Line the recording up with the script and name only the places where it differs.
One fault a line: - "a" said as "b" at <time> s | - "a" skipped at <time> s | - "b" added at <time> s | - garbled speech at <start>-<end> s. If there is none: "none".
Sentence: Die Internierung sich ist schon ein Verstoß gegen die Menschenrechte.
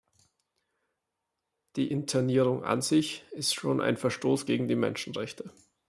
- "an" added at 2.6 s